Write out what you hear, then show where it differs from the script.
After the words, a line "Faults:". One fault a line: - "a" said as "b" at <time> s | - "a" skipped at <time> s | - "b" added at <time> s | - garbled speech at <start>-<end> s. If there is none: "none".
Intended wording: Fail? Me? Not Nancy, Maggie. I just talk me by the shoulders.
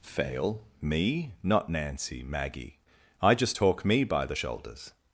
Fail? Me? Not Nancy, Maggie. I just talk me by the shoulders.
Faults:
none